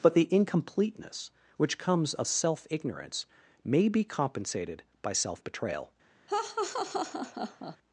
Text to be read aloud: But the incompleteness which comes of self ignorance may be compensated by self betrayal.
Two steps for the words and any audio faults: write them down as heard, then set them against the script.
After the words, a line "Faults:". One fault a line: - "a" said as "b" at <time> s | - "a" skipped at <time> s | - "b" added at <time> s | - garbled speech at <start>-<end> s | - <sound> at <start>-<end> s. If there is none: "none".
But the incompleteness which comes of self ignorance may be compensated by self betrayal.
Faults:
- laugh at 6.3-7.8 s